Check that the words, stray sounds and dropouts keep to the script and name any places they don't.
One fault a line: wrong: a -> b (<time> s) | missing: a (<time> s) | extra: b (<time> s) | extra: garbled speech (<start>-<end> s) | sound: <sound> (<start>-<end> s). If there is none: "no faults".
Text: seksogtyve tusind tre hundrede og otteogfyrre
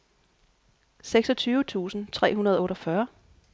no faults